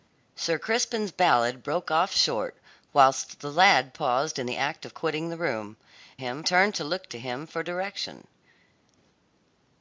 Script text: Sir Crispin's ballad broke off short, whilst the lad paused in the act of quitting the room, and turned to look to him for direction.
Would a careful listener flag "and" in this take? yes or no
yes